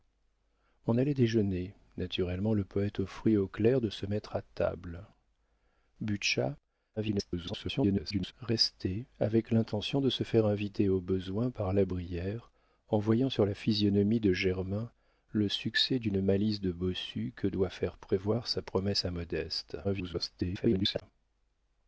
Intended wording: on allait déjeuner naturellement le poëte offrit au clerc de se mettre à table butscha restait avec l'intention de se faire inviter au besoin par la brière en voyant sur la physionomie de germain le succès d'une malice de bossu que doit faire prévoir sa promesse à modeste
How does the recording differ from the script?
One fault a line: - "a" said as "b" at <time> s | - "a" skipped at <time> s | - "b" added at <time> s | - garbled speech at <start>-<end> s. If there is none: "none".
- garbled speech at 7.0-8.3 s
- garbled speech at 19.8-21.0 s